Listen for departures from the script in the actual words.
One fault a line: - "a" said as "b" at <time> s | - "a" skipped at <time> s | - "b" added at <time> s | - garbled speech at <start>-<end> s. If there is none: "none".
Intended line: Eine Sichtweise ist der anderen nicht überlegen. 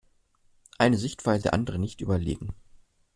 - "ist" skipped at 1.4 s